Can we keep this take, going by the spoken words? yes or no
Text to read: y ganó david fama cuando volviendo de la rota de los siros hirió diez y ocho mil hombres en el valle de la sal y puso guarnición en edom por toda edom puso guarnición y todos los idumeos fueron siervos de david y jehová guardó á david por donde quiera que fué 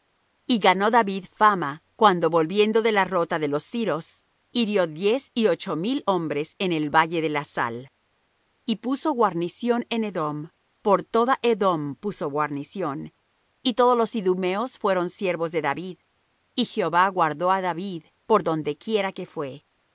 yes